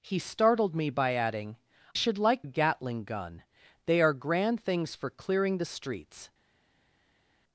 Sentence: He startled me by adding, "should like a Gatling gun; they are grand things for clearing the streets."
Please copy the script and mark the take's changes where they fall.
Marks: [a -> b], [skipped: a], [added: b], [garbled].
He startled me by adding, "should like a Gatling gun; they are grand things for clearing the streets."